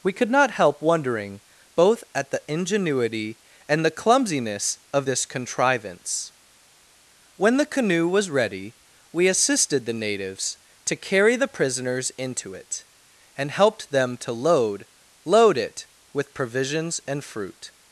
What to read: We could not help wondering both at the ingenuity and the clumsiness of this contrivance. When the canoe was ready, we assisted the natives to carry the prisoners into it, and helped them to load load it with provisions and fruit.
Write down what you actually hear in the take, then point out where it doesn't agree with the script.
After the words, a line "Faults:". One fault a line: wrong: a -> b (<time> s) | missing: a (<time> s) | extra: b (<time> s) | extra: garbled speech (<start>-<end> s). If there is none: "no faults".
We could not help wondering both at the ingenuity and the clumsiness of this contrivance. When the canoe was ready, we assisted the natives to carry the prisoners into it, and helped them to load load it with provisions and fruit.
Faults:
no faults